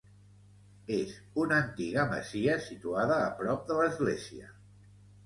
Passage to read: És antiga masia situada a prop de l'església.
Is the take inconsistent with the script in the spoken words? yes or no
yes